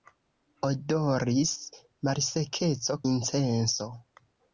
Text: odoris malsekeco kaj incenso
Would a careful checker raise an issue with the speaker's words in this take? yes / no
yes